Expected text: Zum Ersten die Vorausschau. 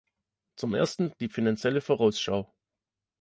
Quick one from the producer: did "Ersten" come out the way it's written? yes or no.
yes